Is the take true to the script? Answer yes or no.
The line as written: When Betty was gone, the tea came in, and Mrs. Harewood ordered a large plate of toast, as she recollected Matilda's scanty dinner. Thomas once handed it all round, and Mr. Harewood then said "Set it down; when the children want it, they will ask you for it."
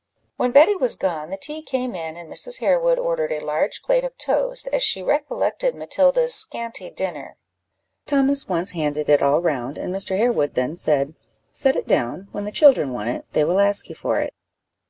yes